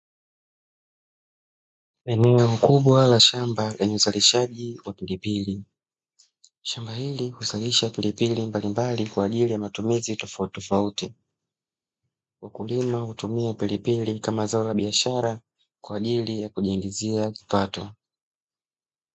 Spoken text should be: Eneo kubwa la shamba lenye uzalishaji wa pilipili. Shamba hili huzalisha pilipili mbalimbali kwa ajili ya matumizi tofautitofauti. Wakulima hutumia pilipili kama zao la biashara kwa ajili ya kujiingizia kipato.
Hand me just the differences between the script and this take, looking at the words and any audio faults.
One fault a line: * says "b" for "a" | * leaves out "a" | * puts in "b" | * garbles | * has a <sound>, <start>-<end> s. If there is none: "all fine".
all fine